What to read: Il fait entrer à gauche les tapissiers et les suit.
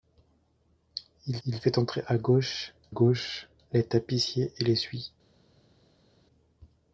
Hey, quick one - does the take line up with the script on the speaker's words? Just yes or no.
no